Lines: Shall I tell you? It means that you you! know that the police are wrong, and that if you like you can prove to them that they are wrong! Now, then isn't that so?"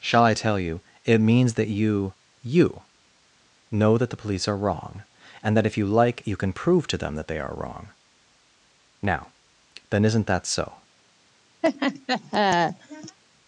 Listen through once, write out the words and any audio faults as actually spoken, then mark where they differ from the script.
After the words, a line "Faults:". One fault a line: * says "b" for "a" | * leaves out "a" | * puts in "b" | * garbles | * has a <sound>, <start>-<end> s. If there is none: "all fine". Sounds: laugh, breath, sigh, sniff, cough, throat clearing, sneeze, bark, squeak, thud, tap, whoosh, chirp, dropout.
Shall I tell you? It means that you you! know that the police are wrong, and that if you like you can prove to them that they are wrong! Now, then isn't that so?"
Faults:
* has a laugh, 11.6-13.2 s